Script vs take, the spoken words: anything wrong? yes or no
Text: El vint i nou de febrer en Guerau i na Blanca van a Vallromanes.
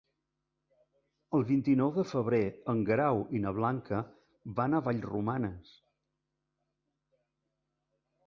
no